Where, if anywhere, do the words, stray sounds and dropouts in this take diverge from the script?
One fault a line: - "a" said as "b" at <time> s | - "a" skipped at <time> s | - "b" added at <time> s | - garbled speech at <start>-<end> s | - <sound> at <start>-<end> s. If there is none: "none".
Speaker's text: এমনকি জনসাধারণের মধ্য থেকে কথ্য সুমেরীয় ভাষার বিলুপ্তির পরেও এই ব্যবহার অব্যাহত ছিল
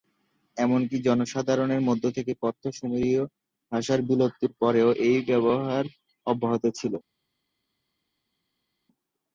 none